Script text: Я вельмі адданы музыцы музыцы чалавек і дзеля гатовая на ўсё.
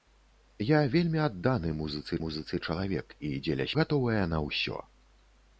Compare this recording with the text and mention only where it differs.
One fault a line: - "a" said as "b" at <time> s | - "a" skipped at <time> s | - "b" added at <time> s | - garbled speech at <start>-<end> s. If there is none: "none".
none